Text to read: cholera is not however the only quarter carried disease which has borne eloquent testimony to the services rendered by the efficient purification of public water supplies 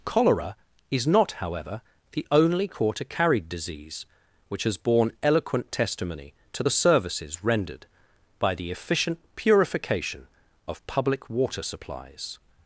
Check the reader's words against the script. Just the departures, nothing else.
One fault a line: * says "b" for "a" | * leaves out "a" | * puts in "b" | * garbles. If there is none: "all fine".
all fine